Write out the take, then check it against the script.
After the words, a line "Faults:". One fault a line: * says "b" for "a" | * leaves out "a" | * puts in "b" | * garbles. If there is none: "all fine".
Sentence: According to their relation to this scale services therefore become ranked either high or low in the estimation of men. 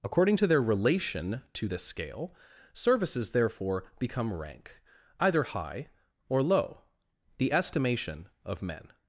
According to their relation to this scale services therefore become rank either high or low the estimation of men.
Faults:
* says "rank" for "ranked"
* leaves out "in"